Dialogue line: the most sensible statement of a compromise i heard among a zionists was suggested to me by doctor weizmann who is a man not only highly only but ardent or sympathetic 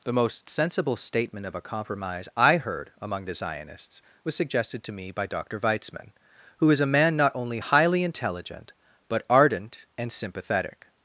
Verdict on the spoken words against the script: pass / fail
fail